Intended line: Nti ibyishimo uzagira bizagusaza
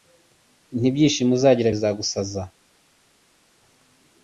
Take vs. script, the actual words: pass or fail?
pass